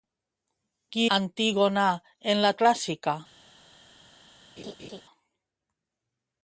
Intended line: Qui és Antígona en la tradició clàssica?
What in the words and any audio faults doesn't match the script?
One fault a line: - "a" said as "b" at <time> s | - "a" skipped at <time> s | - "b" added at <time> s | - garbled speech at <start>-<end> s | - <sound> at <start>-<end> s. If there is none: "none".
- "és" skipped at 1.0 s
- "tradició" skipped at 2.5 s
- laugh at 4.6-5.0 s